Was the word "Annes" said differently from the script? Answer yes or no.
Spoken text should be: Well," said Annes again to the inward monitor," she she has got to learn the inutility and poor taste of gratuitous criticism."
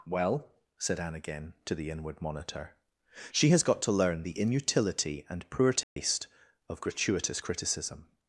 yes